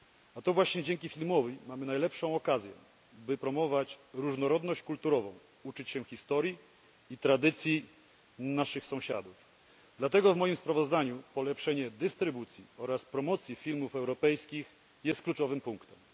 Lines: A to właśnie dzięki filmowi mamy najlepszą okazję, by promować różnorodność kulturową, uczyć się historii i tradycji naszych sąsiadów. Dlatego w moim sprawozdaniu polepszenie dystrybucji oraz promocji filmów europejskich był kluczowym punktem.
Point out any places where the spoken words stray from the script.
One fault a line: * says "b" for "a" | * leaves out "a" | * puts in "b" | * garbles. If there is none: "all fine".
* says "jest" for "był"